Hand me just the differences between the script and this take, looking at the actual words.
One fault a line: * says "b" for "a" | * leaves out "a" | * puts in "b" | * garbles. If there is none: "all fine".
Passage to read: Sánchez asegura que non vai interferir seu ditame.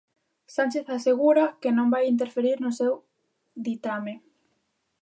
* puts in "no"